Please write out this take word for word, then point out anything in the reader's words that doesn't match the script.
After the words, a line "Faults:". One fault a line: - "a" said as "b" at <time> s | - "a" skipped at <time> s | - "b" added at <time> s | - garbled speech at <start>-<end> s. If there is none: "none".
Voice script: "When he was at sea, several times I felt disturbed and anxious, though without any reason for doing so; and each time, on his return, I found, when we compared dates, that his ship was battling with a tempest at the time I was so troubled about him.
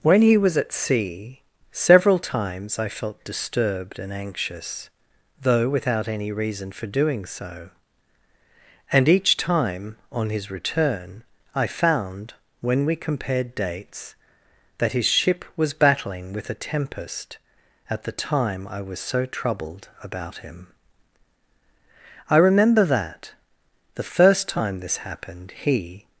"When he was at sea, several times I felt disturbed and anxious, though without any reason for doing so; and each time, on his return, I found, when we compared dates, that his ship was battling with a tempest at the time I was so troubled about him. I remember that, the first time this happened, he
Faults:
- "I remember that the first time this happened he" added at 22.3 s